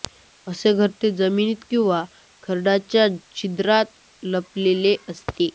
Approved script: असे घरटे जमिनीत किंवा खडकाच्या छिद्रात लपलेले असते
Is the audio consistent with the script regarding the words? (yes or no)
yes